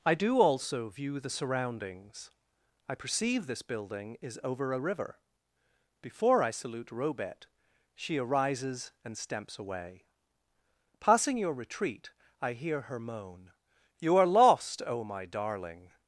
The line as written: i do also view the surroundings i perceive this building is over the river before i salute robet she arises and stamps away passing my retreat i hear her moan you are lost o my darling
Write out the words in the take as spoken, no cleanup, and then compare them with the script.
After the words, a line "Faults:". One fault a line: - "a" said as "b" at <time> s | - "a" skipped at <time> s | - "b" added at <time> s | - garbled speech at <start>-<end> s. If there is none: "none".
i do also view the surroundings i perceive this building is over a river before i salute robet she arises and stamps away passing your retreat i hear her moan you are lost o my darling
Faults:
- "the" said as "a" at 4.7 s
- "my" said as "your" at 11.4 s